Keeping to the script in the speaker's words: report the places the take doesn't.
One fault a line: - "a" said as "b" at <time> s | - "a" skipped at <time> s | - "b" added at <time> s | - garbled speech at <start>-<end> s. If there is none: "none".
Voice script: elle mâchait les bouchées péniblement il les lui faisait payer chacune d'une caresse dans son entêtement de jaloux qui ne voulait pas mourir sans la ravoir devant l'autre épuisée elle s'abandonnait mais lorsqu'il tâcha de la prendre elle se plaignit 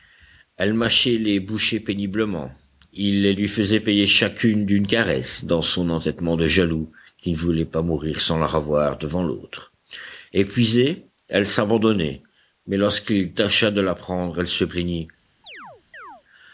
none